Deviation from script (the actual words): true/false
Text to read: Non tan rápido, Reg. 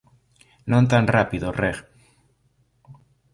false